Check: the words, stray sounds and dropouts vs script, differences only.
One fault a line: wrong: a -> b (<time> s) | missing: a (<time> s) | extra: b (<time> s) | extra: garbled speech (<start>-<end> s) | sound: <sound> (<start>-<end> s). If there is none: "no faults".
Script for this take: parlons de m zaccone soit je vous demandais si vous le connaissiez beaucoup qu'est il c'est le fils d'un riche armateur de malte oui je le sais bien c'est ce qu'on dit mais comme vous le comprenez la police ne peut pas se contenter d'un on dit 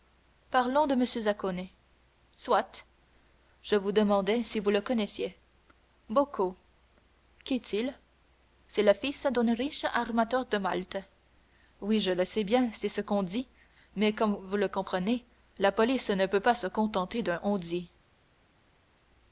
no faults